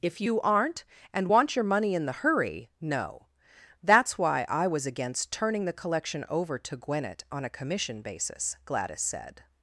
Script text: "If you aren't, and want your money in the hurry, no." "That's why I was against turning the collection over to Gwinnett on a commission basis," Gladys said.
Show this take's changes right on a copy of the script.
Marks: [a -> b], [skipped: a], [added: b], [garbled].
"If you aren't, and want your money in the hurry, no." "That's why I was against turning the collection over to Gwinnett on a commission basis," Gladys said.